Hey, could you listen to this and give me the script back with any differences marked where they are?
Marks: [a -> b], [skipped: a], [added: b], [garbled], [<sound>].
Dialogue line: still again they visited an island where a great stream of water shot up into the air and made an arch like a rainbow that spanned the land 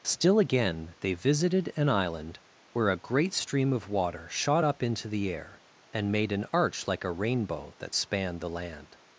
still again they visited an island where a great stream of water shot up into the air and made an arch like a rainbow that spanned the land